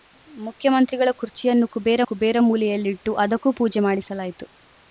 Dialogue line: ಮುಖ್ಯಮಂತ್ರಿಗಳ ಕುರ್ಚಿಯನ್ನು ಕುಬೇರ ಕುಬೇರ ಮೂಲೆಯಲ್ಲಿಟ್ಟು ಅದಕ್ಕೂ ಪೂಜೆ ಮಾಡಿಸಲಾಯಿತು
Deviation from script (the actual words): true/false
false